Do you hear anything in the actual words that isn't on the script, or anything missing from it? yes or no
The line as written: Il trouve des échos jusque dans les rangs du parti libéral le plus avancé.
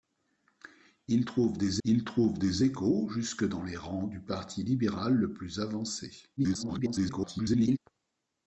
yes